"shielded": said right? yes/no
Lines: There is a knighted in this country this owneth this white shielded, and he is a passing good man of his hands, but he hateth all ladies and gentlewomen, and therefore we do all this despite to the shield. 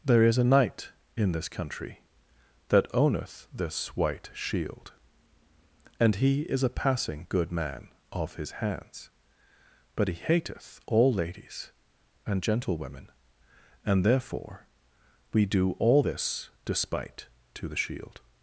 no